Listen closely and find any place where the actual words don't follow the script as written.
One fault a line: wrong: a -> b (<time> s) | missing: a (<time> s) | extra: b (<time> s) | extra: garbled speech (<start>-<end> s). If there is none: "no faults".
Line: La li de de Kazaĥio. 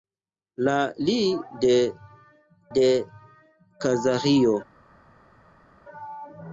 no faults